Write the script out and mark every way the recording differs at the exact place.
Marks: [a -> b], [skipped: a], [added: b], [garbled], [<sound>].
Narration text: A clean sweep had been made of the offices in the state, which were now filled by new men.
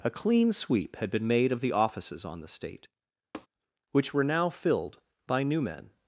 A clean sweep had been made of the offices [in -> on] the state, [tap] which were now filled by new men.